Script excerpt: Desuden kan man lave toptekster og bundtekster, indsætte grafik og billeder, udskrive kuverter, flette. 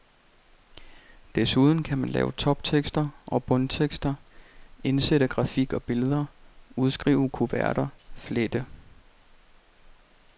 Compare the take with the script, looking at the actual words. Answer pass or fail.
pass